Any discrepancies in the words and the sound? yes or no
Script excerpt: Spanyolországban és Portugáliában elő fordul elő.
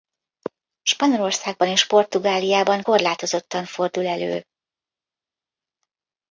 yes